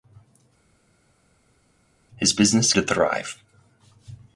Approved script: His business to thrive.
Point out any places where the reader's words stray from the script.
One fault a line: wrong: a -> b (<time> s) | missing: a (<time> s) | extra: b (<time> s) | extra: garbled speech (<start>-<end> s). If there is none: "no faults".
no faults